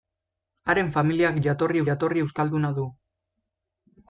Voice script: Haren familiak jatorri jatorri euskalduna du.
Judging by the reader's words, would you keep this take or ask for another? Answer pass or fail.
pass